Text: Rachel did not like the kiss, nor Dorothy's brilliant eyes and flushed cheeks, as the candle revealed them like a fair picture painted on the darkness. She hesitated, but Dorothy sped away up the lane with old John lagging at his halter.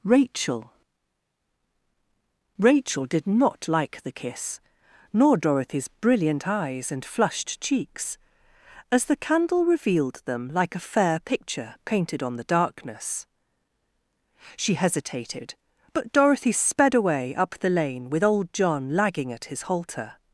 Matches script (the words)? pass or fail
fail